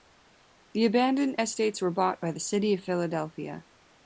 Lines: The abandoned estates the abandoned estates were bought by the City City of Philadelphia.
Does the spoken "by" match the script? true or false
true